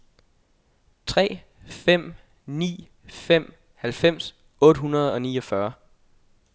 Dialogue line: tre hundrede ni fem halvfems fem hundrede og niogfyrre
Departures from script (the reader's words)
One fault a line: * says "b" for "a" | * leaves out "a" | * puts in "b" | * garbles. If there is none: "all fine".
* says "fem" for "hundrede"
* says "otte" for "fem"